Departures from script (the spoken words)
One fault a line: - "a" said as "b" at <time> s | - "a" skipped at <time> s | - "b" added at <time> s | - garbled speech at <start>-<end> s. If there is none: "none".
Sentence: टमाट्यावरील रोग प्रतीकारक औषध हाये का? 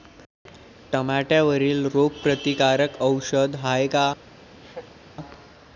none